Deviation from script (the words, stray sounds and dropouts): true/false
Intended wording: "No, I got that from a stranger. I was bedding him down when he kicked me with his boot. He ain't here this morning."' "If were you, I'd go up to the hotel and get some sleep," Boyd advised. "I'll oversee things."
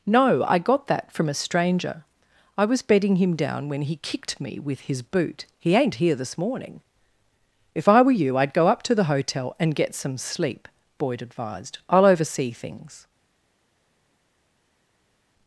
true